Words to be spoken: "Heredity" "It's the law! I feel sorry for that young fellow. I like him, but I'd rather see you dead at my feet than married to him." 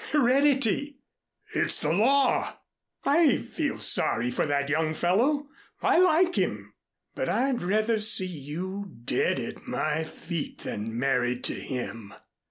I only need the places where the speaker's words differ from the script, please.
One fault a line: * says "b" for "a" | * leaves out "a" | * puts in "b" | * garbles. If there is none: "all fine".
all fine